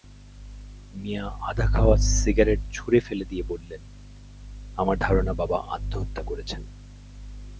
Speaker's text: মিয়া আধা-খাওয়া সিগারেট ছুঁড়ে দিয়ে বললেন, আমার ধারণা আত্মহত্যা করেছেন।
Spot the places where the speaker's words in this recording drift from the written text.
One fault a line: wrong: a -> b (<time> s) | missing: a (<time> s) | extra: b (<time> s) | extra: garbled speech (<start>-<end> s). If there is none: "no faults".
extra: ফেলে (3.0 s)
extra: বাবা (5.3 s)